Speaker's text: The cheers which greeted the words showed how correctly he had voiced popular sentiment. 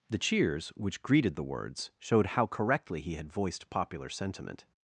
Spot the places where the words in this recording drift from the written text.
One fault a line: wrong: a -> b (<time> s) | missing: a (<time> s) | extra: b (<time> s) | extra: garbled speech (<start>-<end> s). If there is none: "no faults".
no faults